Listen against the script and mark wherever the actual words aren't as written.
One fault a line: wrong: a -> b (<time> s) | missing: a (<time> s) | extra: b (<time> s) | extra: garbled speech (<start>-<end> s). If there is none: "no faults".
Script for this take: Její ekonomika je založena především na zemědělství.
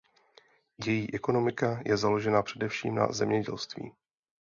no faults